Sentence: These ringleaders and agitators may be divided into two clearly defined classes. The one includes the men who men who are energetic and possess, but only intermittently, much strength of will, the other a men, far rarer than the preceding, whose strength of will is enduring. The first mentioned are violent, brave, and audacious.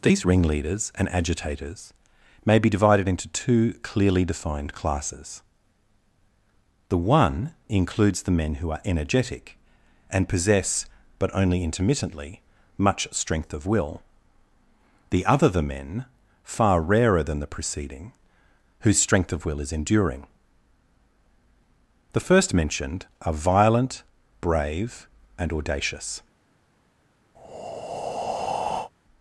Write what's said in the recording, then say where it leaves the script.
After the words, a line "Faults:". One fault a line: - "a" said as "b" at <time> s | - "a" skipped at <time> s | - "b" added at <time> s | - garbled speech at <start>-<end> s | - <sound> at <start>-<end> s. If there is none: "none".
These ringleaders and agitators may be divided into two clearly defined classes. The one includes the men who are energetic and possess, but only intermittently, much strength of will, the other the men, far rarer than the preceding, whose strength of will is enduring. The first mentioned are violent, brave, and audacious.
Faults:
- "men who" skipped at 8.7 s
- "a" said as "the" at 15.5 s
- breath at 27.4-28.9 s